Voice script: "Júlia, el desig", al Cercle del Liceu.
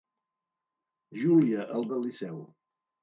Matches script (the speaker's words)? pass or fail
fail